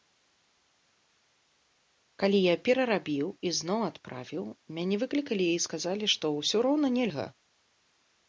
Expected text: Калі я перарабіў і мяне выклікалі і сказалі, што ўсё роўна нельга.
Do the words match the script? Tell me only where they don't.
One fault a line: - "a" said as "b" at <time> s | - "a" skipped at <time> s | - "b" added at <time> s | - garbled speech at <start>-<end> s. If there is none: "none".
- "зноў адправіў" added at 3.6 s